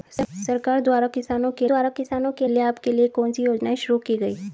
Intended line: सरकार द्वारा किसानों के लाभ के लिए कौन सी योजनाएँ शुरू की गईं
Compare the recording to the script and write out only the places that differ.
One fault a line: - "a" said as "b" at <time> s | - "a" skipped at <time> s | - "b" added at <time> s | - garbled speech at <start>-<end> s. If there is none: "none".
- "द्वारा किसानों के" added at 1.6 s